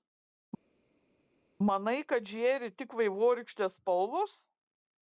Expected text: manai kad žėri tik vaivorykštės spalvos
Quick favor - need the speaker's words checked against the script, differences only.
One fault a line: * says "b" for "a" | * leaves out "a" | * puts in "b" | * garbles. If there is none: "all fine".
all fine